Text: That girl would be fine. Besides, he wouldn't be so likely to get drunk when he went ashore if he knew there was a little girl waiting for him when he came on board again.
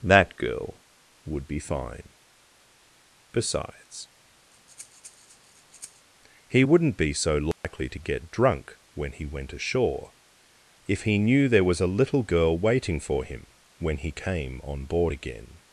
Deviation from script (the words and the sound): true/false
true